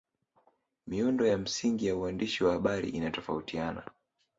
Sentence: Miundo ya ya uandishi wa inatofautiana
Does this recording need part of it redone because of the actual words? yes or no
yes